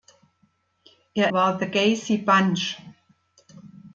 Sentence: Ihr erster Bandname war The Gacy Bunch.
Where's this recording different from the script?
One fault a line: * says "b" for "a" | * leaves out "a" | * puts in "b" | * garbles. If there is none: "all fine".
* leaves out "erster Bandname"